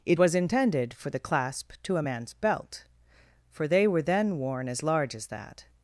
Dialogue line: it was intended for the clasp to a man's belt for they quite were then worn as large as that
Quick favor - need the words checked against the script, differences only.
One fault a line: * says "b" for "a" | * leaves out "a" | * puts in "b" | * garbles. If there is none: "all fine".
* leaves out "quite"